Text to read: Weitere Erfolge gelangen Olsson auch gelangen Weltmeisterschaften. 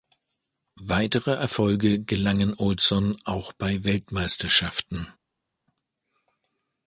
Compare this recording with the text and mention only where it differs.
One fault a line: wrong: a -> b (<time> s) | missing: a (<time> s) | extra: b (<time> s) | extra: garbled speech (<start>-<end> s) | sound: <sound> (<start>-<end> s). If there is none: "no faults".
wrong: gelangen -> bei (3.5 s)